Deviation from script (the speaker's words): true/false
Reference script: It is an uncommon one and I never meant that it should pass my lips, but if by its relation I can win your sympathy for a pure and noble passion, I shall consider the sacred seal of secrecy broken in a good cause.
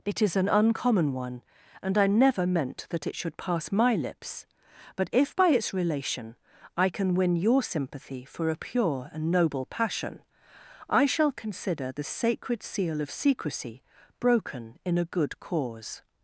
false